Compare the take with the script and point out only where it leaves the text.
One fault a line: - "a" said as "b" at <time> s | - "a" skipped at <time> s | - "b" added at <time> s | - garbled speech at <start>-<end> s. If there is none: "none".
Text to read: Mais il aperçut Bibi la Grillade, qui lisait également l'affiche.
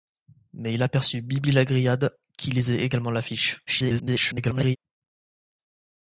- garbled speech at 3.7-4.8 s